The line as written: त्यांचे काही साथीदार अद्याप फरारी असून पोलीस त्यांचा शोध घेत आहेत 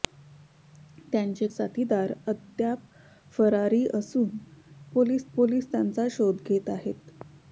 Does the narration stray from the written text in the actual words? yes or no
yes